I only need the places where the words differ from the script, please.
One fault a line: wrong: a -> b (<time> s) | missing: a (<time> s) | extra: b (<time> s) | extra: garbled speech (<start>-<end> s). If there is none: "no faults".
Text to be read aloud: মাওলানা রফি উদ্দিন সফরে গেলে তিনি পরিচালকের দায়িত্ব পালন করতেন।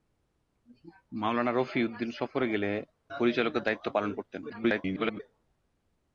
missing: তিনি (2.7 s)
extra: garbled speech (4.5-5.2 s)